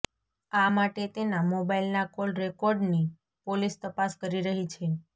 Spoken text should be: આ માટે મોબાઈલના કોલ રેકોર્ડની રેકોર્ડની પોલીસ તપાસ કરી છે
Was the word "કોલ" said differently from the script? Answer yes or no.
no